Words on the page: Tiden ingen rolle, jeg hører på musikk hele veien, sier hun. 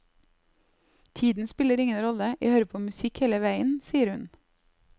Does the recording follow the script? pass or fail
fail